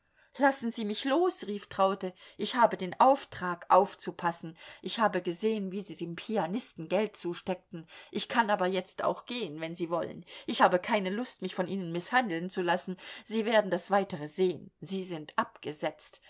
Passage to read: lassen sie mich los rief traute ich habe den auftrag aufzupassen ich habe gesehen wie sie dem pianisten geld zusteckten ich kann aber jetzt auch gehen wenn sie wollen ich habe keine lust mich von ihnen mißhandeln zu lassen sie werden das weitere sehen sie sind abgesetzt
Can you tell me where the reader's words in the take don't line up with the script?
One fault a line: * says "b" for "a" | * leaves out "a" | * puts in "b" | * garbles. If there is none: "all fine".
all fine